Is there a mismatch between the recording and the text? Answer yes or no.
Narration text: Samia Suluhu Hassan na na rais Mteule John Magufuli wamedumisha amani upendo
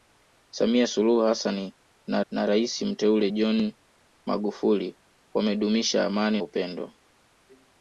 no